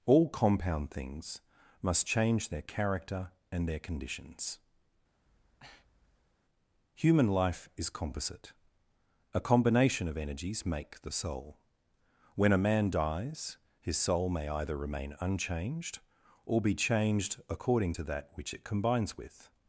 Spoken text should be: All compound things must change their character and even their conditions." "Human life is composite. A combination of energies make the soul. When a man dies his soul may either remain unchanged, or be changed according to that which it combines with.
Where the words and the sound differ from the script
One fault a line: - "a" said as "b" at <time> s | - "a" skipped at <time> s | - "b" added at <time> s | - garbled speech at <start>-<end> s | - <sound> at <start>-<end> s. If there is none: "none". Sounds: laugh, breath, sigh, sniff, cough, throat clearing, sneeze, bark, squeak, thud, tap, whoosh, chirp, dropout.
- "even" skipped at 3.7 s
- breath at 5.2-6.4 s